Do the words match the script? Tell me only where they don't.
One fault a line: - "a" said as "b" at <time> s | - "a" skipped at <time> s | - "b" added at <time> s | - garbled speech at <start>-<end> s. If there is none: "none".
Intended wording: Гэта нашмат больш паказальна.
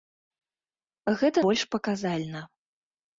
- "нашмат" skipped at 1.4 s